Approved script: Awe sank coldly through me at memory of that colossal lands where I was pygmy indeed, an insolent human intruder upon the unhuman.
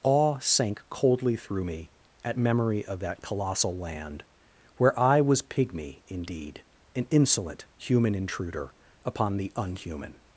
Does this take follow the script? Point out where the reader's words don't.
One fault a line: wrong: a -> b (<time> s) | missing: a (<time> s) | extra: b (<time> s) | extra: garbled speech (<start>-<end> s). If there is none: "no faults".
wrong: lands -> land (3.8 s)